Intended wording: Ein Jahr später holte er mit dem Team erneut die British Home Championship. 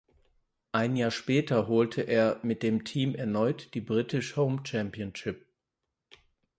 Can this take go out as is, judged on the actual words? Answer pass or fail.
pass